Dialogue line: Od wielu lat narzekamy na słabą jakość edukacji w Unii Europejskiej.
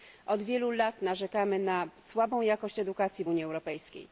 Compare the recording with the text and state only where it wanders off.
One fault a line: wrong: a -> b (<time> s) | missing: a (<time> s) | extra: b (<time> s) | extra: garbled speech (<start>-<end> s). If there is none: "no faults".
no faults